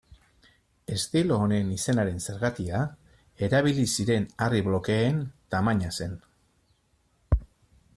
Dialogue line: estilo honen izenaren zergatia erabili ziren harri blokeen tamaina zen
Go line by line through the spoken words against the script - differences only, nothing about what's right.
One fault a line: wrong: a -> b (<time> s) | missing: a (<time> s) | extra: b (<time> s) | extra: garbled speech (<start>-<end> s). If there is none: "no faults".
no faults